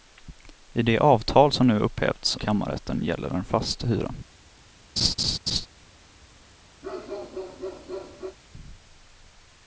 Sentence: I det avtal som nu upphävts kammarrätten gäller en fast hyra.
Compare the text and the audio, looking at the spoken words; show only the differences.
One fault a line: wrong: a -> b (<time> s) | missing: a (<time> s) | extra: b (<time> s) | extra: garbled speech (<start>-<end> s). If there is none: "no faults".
no faults